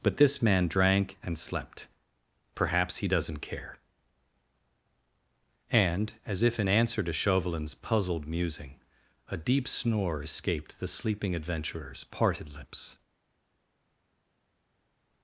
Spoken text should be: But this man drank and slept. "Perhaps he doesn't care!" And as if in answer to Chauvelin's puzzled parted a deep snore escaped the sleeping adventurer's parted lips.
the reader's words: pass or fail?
fail